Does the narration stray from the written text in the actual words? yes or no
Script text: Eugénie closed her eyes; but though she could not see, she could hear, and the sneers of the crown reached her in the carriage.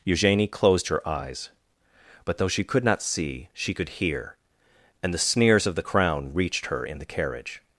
no